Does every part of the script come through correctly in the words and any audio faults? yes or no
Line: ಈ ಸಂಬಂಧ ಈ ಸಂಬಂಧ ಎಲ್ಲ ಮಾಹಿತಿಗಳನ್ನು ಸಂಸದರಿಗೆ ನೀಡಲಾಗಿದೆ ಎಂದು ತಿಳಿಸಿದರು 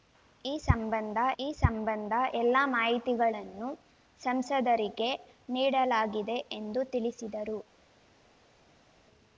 yes